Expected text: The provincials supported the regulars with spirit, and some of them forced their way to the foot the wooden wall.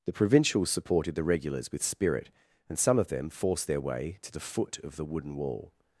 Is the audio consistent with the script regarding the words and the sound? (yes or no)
no